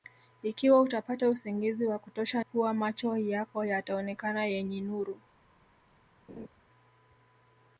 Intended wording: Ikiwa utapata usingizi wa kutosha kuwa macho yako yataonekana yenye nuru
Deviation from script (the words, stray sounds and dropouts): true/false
true